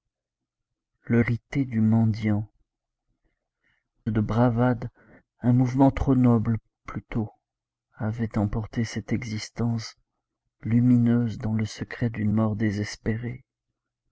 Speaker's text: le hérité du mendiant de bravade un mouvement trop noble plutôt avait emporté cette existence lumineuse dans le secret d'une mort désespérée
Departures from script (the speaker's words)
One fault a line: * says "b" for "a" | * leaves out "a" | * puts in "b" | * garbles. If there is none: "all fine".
all fine